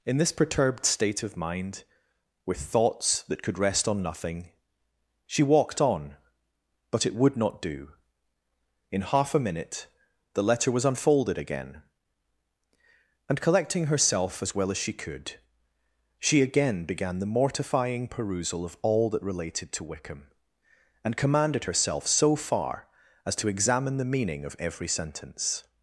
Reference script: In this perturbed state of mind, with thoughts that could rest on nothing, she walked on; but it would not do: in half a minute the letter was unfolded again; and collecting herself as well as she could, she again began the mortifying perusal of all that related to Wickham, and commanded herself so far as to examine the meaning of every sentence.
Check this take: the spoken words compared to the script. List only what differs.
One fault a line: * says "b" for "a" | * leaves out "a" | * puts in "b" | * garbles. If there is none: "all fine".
all fine